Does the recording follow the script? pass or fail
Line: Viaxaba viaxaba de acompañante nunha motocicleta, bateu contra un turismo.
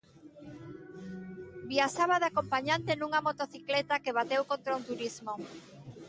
fail